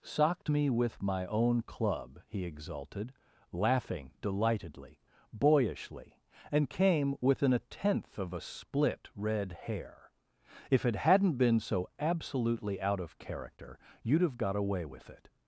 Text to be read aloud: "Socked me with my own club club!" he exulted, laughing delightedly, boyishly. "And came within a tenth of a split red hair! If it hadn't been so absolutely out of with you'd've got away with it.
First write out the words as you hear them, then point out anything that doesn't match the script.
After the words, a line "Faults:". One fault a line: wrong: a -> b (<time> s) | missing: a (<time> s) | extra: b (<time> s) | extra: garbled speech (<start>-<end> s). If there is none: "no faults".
"Socked me with my own club!" he exulted, laughing delightedly, boyishly. "And came within a tenth of a split red hair! If it hadn't been so absolutely out of character you'd've got away with it.
Faults:
missing: club (2.2 s)
wrong: with -> character (13.2 s)